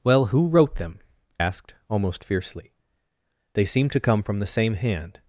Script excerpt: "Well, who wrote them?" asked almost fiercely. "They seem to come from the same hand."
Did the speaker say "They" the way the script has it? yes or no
yes